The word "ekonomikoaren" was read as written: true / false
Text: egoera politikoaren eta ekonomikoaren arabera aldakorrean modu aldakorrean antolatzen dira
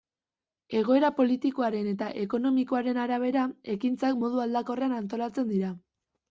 true